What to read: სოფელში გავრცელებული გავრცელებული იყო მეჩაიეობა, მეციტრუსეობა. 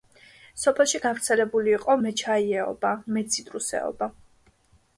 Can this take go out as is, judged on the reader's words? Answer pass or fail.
fail